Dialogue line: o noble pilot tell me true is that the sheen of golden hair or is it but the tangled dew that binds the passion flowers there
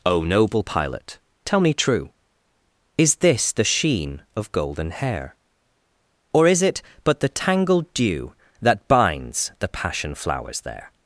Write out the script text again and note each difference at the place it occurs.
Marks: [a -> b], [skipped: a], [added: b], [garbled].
o noble pilot tell me true is [that -> this] the sheen of golden hair or is it but the tangled dew that binds the passion flowers there